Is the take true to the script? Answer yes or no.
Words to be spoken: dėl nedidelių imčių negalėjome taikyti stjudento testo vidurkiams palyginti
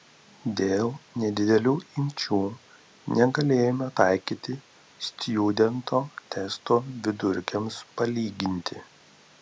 yes